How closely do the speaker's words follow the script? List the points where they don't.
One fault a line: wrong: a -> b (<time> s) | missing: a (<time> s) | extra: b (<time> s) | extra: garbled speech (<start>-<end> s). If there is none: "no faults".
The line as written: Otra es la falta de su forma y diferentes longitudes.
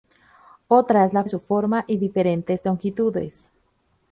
missing: falta (1.2 s)